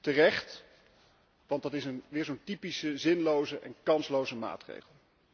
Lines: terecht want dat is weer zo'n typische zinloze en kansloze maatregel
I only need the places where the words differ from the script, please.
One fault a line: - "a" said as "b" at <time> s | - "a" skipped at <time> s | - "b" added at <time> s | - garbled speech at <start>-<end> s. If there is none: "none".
none